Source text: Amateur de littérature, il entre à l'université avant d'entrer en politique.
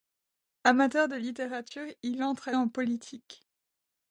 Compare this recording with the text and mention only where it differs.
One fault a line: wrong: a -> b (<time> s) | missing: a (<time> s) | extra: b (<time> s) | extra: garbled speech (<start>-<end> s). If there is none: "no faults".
missing: l'université avant d'entrer (2.5 s)